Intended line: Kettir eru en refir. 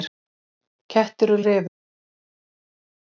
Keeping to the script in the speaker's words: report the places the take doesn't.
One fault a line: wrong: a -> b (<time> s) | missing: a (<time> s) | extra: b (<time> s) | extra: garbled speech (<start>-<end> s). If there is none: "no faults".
no faults